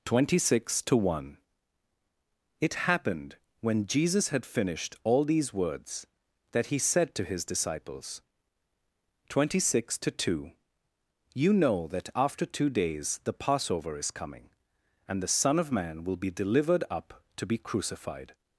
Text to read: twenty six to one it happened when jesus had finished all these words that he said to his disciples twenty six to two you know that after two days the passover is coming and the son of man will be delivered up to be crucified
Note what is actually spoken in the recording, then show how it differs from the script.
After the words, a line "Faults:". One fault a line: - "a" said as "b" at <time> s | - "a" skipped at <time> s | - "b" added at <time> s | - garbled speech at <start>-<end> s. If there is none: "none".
twenty six to one it happened when jesus had finished all these words that he said to his disciples twenty six to two you know that after two days the passover is coming and the son of man will be delivered up to be crucified
Faults:
none